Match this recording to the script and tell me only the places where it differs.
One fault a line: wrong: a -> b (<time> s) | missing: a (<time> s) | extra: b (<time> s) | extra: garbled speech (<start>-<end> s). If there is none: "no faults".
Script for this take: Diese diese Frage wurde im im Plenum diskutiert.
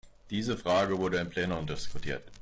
missing: diese (0.6 s)
missing: im (1.3 s)